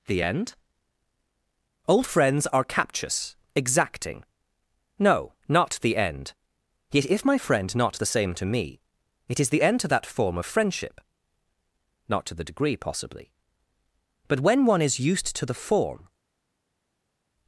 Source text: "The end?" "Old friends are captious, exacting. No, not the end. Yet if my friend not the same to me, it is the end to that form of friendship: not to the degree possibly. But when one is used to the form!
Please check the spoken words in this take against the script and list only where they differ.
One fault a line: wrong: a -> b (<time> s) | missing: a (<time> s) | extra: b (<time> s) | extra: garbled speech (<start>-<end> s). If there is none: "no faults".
no faults